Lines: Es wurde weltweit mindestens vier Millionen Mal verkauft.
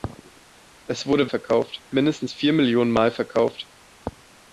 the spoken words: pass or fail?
fail